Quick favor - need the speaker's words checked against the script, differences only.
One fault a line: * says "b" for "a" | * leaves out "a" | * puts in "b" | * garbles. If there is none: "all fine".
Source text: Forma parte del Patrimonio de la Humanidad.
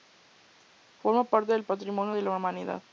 all fine